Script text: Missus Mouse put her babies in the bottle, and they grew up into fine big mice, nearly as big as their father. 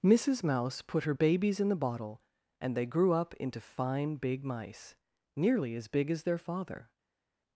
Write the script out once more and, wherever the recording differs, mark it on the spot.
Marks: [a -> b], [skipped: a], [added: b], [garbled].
Missus Mouse put her babies in the bottle, and they grew up into fine big mice, nearly as big as their father.